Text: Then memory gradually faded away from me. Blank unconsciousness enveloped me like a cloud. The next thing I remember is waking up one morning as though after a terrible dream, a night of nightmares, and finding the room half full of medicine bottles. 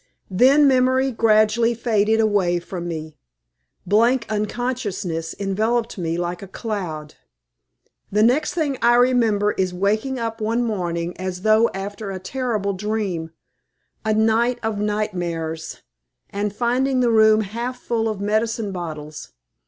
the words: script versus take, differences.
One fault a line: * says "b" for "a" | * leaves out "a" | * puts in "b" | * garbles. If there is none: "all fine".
all fine